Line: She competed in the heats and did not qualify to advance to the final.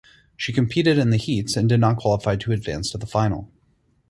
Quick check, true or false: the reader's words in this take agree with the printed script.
true